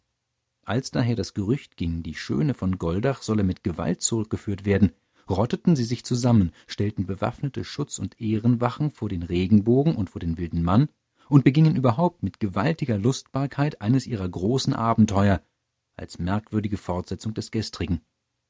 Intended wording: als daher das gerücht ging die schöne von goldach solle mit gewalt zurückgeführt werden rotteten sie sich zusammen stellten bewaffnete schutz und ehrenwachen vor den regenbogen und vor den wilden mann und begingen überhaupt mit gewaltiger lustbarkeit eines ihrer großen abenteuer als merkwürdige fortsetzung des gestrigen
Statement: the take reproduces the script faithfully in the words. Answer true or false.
true